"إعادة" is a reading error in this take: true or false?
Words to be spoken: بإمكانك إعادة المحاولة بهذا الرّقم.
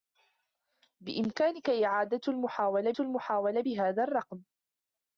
false